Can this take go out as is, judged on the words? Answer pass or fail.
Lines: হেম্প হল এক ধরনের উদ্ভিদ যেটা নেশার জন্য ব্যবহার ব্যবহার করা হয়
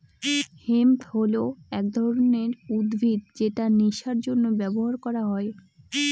fail